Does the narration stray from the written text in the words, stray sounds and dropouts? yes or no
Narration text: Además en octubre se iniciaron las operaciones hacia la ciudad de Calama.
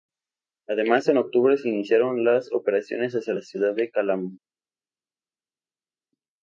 no